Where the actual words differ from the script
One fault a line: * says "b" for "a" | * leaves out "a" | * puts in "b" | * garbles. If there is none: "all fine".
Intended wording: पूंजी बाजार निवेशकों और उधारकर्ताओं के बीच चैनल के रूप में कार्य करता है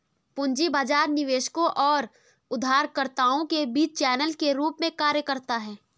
all fine